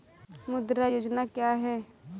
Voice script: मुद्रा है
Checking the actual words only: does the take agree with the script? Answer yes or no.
no